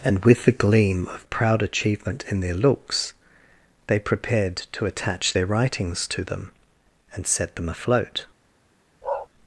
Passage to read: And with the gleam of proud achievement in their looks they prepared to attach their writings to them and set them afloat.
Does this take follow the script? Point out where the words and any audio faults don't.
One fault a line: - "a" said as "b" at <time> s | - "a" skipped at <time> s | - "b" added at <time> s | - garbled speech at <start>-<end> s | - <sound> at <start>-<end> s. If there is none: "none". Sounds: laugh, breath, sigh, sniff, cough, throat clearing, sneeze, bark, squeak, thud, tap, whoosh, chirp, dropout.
- bark at 9.0-9.3 s